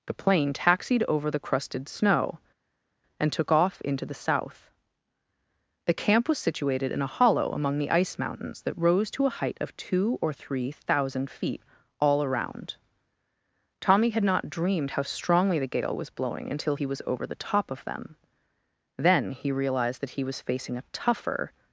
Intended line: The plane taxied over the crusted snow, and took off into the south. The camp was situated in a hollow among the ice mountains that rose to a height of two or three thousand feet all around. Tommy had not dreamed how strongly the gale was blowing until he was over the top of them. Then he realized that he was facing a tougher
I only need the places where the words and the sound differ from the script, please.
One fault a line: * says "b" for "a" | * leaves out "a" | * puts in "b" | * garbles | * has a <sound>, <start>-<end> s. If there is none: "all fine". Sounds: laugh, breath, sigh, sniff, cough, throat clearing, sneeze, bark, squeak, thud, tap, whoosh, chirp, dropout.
all fine